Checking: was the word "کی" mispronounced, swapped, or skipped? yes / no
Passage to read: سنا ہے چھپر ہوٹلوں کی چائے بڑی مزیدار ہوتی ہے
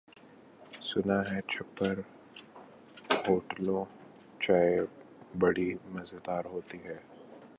yes